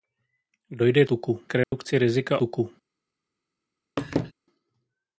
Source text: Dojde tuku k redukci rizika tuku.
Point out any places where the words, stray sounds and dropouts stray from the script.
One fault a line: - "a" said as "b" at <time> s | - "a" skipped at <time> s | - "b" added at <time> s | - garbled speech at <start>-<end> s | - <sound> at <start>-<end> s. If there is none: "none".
- dropout at 1.6-1.7 s
- laugh at 4.0-4.3 s